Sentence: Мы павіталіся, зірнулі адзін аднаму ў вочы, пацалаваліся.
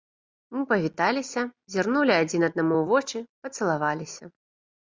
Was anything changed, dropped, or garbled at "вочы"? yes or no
no